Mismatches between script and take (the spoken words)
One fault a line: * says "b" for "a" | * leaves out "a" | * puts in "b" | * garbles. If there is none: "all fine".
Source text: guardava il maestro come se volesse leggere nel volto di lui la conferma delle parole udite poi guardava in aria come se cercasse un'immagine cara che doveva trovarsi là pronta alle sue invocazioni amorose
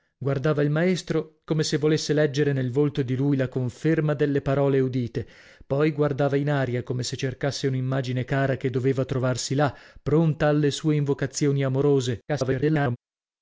* garbles